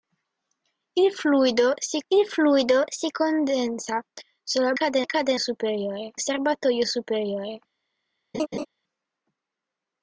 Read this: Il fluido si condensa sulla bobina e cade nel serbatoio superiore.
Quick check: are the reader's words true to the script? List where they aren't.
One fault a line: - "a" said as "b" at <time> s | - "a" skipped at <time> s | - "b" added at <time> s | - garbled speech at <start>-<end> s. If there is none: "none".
- "il fluido si" added at 2.1 s
- "bobina" said as "cade" at 4.7 s
- "nel" said as "superiore" at 5.4 s